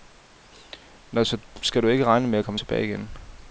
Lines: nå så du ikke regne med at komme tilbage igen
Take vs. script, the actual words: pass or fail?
fail